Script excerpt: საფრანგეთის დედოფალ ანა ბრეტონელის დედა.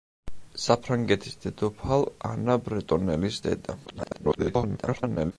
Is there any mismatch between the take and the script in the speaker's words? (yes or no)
yes